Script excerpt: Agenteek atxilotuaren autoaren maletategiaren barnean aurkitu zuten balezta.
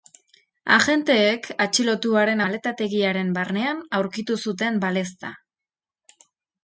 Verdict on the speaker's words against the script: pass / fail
fail